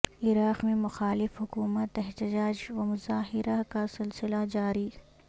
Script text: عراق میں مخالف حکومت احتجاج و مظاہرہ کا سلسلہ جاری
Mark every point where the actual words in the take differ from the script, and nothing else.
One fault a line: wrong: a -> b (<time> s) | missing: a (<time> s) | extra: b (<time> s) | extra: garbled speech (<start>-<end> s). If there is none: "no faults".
no faults